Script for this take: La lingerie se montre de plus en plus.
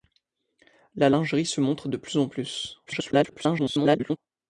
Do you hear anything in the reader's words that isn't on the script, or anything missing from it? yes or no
yes